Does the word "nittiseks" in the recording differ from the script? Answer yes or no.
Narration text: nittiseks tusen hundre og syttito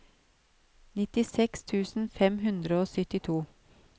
no